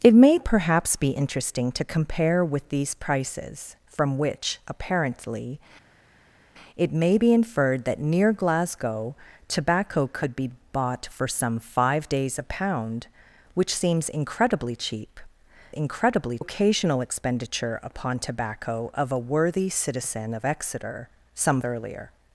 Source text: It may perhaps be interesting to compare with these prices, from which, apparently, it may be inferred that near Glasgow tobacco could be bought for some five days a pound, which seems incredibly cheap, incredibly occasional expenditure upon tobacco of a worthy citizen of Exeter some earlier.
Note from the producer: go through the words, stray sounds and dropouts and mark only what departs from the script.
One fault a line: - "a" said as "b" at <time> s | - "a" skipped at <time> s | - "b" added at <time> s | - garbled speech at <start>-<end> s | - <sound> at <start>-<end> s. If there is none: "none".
none